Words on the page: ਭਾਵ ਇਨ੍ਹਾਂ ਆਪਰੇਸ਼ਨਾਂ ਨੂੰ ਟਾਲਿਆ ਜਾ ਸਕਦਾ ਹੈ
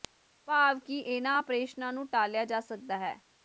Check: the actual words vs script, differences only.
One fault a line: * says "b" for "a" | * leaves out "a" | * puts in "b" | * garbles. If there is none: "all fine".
* puts in "ਕਿ"